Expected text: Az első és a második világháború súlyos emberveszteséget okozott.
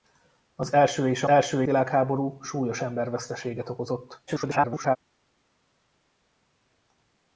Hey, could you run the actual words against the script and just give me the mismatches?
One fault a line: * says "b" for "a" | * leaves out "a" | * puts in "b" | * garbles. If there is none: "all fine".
* says "első" for "második"
* garbles